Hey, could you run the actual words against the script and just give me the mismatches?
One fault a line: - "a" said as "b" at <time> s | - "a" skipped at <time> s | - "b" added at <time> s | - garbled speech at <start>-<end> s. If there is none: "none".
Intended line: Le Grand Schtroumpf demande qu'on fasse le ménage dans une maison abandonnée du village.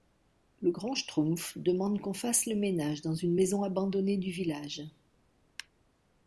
none